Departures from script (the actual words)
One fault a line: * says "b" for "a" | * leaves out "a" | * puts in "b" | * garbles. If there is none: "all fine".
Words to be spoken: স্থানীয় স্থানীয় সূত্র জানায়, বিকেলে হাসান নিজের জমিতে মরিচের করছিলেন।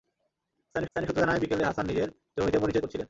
all fine